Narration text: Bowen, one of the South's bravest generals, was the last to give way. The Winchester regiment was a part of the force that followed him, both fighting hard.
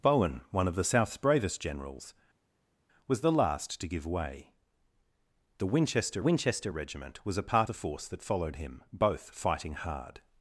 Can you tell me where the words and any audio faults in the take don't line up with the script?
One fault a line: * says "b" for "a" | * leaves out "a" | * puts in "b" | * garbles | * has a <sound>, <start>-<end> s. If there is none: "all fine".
* puts in "Winchester"
* leaves out "of"